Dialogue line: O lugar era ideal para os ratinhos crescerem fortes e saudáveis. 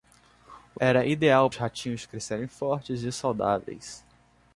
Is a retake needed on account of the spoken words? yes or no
yes